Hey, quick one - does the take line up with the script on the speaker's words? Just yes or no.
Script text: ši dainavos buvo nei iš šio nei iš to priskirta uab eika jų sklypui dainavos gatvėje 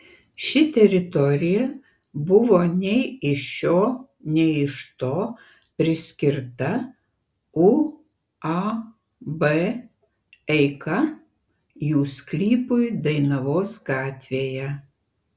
no